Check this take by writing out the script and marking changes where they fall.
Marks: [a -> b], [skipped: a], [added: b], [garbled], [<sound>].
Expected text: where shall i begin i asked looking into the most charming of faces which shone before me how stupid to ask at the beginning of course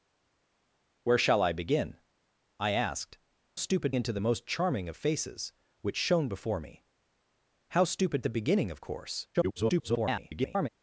where shall i begin i asked [looking -> stupid] into the most charming of faces which shone before me how stupid [skipped: to ask at] the beginning of course [garbled]